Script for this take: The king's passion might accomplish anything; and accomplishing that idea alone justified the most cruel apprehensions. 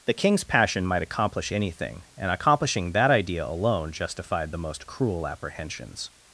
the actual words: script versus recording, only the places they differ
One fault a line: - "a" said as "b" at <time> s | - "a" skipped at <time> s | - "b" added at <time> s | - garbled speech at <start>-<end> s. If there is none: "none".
none